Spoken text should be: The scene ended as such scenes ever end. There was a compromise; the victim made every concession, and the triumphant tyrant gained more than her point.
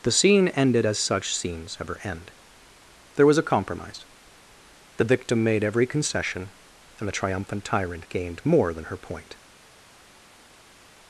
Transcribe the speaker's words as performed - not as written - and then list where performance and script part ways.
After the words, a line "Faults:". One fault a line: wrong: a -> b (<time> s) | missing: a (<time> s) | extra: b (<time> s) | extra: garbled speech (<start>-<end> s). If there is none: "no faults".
The scene ended as such scenes ever end. There was a compromise; the victim made every concession, and the triumphant tyrant gained more than her point.
Faults:
no faults